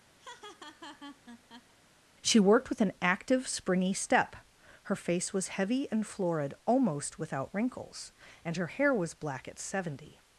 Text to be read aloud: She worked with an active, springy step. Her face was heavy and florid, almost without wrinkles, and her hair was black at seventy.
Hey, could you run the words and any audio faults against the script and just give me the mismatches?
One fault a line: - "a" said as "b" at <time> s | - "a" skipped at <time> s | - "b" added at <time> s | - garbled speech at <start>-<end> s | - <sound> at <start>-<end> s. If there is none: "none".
- laugh at 0.2-1.7 s